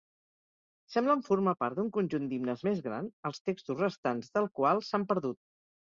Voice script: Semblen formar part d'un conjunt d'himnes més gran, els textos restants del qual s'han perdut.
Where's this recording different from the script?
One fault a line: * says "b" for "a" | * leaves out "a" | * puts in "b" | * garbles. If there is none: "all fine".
all fine